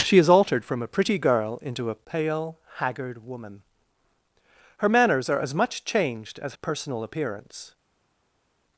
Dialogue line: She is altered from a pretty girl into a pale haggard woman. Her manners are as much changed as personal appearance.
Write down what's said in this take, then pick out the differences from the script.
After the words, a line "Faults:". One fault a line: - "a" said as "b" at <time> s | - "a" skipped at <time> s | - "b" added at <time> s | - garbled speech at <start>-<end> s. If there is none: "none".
She is altered from a pretty girl into a pale haggard woman. Her manners are as much changed as personal appearance.
Faults:
none